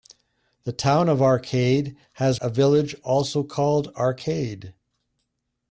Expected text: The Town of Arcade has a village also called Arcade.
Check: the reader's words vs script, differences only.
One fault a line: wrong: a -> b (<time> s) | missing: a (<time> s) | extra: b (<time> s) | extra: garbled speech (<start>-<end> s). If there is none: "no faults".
no faults